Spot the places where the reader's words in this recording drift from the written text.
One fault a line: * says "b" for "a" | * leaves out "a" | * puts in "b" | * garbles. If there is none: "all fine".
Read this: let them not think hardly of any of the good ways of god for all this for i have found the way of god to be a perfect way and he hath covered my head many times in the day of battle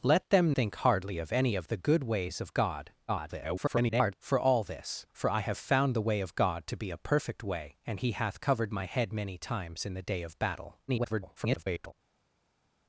* leaves out "not"
* garbles
* garbles